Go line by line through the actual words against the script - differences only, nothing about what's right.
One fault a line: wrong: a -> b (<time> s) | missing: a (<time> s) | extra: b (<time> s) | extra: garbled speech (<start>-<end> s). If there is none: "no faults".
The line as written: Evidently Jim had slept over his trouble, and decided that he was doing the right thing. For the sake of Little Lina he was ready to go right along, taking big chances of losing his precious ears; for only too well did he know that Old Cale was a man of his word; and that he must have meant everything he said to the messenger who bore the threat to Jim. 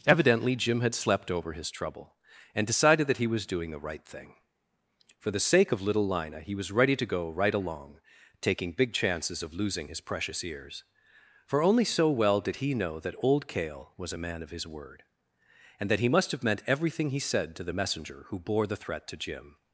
wrong: too -> so (11.8 s)